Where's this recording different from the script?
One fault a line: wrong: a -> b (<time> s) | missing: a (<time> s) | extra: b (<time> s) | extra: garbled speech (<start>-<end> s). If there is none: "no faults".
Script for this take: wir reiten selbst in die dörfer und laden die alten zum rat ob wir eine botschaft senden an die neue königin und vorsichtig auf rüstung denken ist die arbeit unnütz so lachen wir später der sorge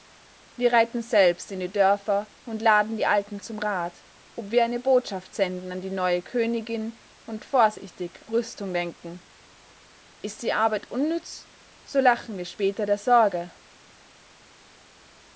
missing: auf (8.2 s)